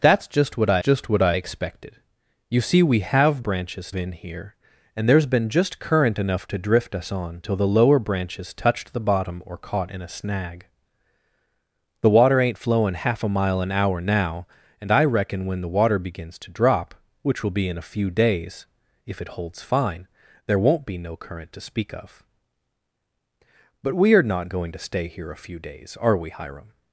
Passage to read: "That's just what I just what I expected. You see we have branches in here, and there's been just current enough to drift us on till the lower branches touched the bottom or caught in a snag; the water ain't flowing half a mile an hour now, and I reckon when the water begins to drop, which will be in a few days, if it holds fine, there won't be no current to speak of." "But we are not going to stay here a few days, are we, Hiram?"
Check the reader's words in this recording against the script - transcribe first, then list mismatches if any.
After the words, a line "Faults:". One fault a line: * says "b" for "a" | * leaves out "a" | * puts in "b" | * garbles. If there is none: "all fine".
"That's just what I just what I expected. You see we have branches in here, and there's been just current enough to drift us on till the lower branches touched the bottom or caught in a snag; the water ain't flowing half a mile an hour now, and I reckon when the water begins to drop, which will be in a few days, if it holds fine, there won't be no current to speak of." "But we are not going to stay here a few days, are we, Hiram?"
Faults:
all fine